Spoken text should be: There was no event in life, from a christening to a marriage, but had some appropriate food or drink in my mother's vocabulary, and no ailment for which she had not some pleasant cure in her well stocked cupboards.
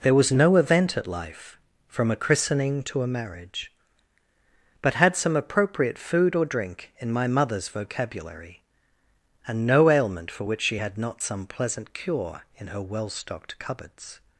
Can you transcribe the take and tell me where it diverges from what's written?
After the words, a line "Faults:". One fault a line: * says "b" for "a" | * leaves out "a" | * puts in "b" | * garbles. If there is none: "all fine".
There was no event at life, from a christening to a marriage, but had some appropriate food or drink in my mother's vocabulary, and no ailment for which she had not some pleasant cure in her well stocked cupboards.
Faults:
* says "at" for "in"